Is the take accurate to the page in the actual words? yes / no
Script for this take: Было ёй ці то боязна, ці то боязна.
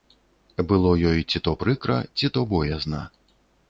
no